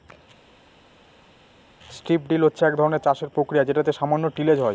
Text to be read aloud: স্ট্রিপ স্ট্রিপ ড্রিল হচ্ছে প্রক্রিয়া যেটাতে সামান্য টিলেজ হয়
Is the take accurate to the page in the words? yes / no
no